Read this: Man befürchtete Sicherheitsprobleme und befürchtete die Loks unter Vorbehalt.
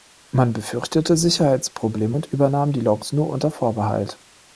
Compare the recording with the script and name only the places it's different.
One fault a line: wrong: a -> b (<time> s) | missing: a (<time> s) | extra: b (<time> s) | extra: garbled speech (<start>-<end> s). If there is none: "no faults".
wrong: befürchtete -> übernahm (2.3 s)
extra: nur (3.1 s)